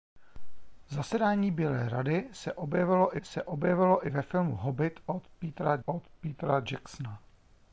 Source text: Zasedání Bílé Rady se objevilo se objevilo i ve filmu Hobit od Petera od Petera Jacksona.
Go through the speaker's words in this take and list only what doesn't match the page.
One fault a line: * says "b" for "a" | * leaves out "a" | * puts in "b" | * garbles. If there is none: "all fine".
all fine